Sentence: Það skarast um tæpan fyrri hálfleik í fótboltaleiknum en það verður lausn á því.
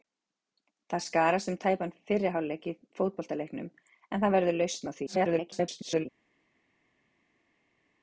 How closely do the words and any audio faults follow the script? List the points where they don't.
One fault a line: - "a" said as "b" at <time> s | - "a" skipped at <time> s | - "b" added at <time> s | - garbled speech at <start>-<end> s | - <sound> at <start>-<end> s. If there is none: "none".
- garbled speech at 5.1-6.1 s